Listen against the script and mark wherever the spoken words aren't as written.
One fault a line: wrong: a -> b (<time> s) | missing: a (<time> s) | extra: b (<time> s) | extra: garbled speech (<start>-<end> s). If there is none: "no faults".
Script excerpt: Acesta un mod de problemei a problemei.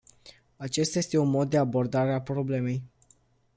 extra: este (1.0 s)
wrong: problemei -> abordare (1.6 s)